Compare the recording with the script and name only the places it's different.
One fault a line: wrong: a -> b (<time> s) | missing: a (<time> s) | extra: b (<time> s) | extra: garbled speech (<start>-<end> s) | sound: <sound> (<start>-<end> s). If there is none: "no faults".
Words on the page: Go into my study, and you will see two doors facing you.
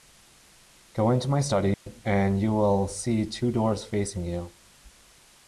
sound: dropout (1.7-1.9 s)